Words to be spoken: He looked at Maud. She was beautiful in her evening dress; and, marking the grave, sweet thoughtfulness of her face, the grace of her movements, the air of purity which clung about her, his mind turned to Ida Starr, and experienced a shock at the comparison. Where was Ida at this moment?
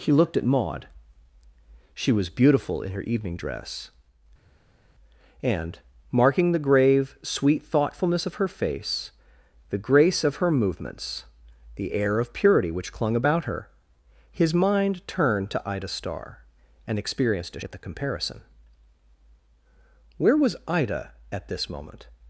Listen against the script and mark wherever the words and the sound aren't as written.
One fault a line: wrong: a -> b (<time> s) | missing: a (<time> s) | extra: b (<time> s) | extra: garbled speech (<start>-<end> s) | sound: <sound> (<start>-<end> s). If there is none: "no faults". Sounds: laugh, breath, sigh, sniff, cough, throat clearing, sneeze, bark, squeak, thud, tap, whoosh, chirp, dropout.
missing: shock (17.7 s)